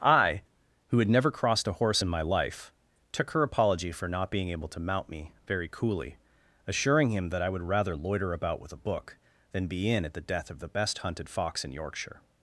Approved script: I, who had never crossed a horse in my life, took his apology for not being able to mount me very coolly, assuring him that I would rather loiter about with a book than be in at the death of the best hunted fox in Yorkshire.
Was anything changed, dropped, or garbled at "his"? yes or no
yes